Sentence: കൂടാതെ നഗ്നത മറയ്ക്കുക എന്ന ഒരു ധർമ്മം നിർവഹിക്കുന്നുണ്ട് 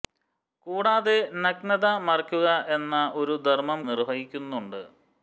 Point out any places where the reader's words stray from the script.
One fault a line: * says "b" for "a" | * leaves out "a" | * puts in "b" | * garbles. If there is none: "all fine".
all fine